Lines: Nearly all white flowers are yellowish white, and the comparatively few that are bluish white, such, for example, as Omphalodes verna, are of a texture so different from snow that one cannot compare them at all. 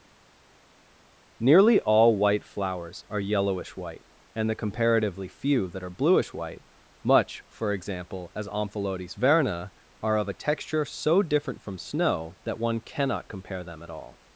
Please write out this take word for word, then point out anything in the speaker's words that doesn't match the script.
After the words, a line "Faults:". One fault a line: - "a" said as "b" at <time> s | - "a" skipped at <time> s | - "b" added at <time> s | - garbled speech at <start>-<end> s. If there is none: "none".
Nearly all white flowers are yellowish white, and the comparatively few that are bluish white, much, for example, as Omphalodes verna, are of a texture so different from snow that one cannot compare them at all.
Faults:
- "such" said as "much" at 7.0 s